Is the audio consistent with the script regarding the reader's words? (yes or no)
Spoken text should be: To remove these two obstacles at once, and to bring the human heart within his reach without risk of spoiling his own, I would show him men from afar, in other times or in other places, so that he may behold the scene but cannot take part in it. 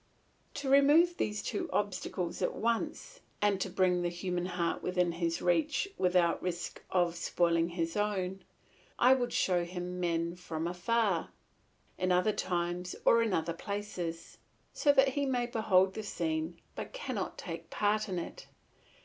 yes